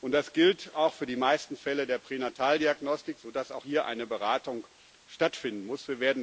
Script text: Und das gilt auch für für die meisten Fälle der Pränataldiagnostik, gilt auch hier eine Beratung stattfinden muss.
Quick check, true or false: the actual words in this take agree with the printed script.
false